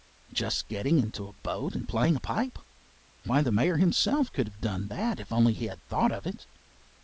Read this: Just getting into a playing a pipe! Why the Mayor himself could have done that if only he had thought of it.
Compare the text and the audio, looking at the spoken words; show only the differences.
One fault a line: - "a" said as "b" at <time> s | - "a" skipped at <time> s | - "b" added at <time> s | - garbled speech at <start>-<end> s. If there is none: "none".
- "boat and" added at 1.3 s